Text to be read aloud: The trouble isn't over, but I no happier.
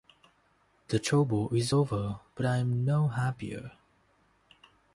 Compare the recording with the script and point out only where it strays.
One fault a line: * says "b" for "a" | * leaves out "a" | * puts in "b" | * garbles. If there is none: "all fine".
* says "is" for "isn't"
* puts in "am"